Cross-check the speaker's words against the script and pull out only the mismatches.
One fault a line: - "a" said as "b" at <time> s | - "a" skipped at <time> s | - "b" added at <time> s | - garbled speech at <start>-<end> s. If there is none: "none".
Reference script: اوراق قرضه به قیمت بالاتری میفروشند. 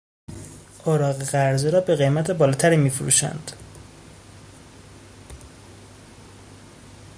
- "را" added at 1.7 s